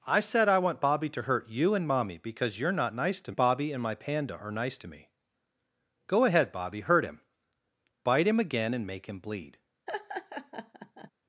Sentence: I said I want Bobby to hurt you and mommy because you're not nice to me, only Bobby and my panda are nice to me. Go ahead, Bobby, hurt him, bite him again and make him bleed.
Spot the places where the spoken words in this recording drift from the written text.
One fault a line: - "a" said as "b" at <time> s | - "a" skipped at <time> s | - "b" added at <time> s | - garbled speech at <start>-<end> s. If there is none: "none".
- "me only" skipped at 3.3 s